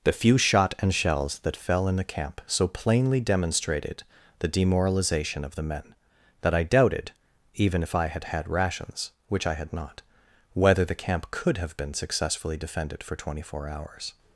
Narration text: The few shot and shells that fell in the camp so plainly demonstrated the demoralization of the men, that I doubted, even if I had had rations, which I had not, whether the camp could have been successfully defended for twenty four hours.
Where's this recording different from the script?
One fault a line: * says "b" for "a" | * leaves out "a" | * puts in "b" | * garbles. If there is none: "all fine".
all fine